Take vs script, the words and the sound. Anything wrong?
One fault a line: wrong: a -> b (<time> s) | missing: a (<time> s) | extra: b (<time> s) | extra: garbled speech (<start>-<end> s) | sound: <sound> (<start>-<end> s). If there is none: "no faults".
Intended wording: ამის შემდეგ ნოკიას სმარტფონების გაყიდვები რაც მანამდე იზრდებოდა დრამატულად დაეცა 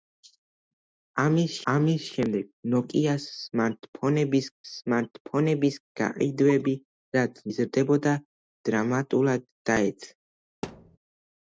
extra: ამის (1.7 s)
extra: სმარტფონების (4.7 s)
missing: მანამდე (7.4 s)
sound: thud (10.6-11.0 s)